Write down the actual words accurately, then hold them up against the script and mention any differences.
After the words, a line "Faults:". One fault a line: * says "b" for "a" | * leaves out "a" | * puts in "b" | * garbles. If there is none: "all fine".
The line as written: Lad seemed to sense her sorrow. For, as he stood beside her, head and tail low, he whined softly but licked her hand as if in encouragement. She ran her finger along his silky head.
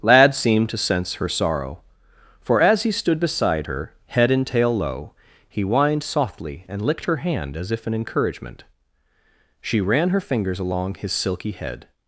Lad seemed to sense her sorrow. For, as he stood beside her, head and tail low, he whined softly and licked her hand as if in encouragement. She ran her fingers along his silky head.
Faults:
* says "and" for "but"
* says "fingers" for "finger"